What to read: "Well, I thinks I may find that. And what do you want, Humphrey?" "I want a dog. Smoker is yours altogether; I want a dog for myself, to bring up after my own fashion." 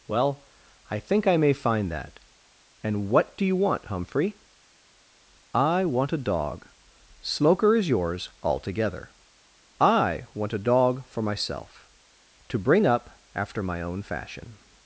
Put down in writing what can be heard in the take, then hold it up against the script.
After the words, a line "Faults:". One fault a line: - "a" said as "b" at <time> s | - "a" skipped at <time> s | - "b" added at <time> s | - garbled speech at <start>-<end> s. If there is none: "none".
"Well, I think I may find that. And what do you want, Humphrey?" "I want a dog. Smoker is yours altogether; I want a dog for myself, to bring up after my own fashion."
Faults:
- "thinks" said as "think" at 1.0 s